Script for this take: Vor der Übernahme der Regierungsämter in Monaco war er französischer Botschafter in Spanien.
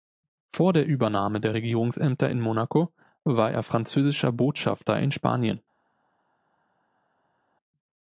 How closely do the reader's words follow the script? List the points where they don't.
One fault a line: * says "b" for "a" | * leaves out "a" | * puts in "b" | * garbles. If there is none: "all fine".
all fine